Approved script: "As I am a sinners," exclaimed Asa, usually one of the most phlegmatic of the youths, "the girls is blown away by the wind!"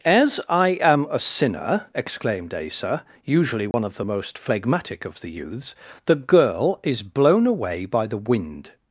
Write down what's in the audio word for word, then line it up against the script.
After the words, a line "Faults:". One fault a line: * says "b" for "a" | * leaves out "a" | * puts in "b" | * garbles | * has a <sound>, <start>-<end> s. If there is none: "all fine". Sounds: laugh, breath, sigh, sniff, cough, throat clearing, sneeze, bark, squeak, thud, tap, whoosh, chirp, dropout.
"As I am a sinner," exclaimed Asa, usually one of the most phlegmatic of the youths, "the girl is blown away by the wind!"
Faults:
* says "sinner" for "sinners"
* has a dropout, 3.7-3.7 s
* says "girl" for "girls"